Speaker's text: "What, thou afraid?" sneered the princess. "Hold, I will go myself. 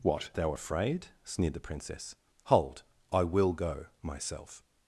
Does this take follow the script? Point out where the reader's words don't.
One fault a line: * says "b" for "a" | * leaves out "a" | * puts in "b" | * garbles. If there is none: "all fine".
all fine